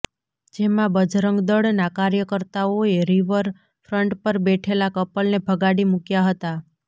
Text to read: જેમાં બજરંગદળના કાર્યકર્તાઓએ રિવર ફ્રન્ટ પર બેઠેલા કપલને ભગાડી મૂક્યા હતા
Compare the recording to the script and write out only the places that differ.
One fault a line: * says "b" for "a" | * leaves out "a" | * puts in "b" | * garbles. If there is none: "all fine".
all fine